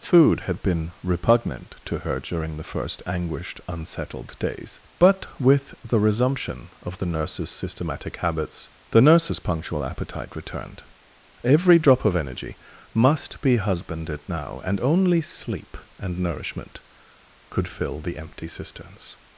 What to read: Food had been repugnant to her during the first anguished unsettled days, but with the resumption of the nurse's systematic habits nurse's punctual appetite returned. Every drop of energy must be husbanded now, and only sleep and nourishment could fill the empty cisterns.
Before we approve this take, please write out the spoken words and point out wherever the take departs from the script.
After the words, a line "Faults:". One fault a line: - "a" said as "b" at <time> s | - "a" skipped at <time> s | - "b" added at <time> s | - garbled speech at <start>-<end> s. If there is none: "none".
Food had been repugnant to her during the first anguished unsettled days, but with the resumption of the nurse's systematic habits the nurse's punctual appetite returned. Every drop of energy must be husbanded now, and only sleep and nourishment could fill the empty cisterns.
Faults:
- "the" added at 8.9 s